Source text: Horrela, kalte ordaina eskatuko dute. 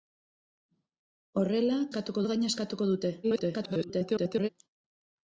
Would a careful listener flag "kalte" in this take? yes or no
yes